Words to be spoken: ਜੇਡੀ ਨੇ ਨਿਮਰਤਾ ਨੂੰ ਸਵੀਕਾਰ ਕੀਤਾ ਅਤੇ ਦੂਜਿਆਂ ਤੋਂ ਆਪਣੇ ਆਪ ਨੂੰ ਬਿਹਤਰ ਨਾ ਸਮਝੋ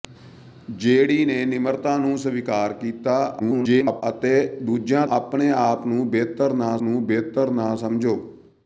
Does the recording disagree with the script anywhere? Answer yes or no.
yes